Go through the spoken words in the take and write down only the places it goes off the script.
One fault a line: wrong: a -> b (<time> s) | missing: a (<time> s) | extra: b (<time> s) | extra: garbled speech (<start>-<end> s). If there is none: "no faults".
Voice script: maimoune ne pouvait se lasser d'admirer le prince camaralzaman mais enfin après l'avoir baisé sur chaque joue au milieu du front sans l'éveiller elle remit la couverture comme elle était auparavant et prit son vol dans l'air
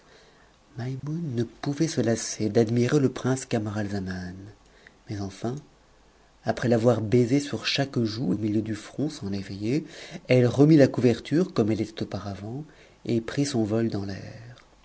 no faults